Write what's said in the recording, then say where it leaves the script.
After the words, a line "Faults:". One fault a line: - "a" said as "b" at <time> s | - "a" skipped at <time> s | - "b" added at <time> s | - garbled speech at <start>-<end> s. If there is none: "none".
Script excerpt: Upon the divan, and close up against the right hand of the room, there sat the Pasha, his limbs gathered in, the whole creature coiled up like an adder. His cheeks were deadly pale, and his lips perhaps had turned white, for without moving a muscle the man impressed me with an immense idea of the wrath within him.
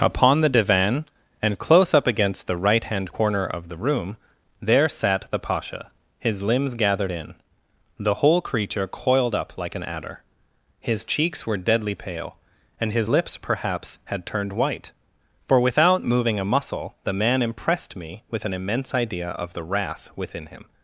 Upon the divan, and close up against the right hand corner of the room, there sat the Pasha, his limbs gathered in, the whole creature coiled up like an adder. His cheeks were deadly pale, and his lips perhaps had turned white, for without moving a muscle the man impressed me with an immense idea of the wrath within him.
Faults:
- "corner" added at 3.1 s